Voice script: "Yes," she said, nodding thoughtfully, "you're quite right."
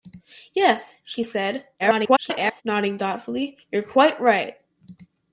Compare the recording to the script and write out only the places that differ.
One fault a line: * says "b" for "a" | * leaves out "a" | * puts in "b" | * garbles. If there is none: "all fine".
* garbles